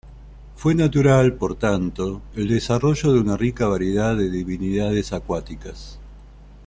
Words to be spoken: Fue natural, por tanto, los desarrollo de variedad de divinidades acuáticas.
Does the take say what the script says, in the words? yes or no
no